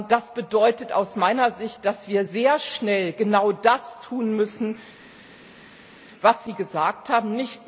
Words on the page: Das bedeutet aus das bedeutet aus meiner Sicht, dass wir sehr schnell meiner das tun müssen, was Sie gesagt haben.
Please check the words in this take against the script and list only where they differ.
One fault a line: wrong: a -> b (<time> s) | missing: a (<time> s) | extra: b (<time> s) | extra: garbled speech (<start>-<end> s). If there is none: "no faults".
missing: das bedeutet aus (1.1 s)
wrong: meiner -> genau (3.1 s)